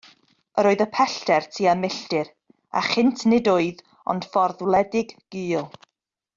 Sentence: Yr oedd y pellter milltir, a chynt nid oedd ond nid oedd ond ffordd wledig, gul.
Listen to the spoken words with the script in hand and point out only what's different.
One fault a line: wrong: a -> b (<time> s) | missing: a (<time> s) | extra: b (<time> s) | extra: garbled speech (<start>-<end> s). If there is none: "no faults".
extra: tua (1.6 s)
missing: nid oedd ond (4.3 s)